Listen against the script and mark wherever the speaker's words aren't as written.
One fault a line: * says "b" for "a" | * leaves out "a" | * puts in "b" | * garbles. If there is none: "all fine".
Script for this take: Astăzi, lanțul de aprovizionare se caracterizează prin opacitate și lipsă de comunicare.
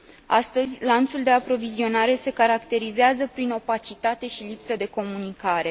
all fine